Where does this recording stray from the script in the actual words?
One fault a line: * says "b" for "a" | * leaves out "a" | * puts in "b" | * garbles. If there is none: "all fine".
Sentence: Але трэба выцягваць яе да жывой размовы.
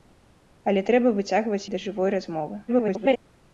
* leaves out "яе"
* garbles